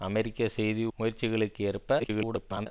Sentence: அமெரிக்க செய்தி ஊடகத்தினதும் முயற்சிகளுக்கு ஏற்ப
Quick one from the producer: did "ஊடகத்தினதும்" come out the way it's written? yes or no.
no